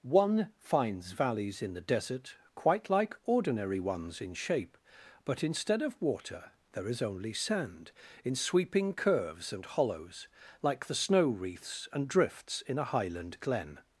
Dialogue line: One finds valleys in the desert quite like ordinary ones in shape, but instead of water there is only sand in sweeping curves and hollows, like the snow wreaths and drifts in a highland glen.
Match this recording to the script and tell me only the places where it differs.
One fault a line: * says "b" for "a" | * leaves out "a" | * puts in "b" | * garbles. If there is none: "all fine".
all fine